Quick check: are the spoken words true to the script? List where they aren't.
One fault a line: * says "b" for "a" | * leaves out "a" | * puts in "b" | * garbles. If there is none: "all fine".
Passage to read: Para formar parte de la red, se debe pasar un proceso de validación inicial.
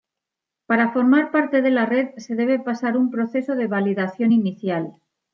all fine